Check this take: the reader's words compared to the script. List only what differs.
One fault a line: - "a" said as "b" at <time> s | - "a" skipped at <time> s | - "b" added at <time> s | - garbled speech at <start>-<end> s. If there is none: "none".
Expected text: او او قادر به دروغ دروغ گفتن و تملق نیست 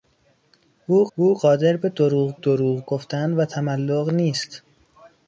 none